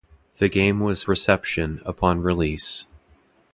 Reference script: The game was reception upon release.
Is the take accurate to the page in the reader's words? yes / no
yes